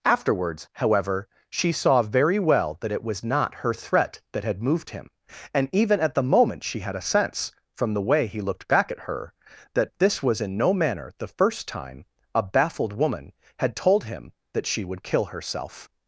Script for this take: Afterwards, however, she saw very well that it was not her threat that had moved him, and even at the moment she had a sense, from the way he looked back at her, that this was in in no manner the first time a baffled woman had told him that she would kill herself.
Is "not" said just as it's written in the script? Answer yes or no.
yes